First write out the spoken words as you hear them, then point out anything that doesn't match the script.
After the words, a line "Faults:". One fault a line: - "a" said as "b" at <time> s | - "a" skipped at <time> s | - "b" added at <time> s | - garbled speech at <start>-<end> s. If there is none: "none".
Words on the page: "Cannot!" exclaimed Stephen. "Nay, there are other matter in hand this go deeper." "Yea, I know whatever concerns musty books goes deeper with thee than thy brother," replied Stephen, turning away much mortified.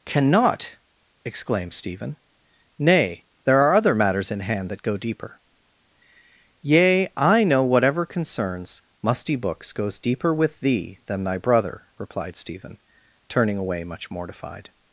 "Cannot!" exclaimed Stephen. "Nay, there are other matters in hand that go deeper." "Yea, I know whatever concerns musty books goes deeper with thee than thy brother," replied Stephen, turning away much mortified.
Faults:
- "matter" said as "matters" at 3.9 s
- "this" said as "that" at 4.7 s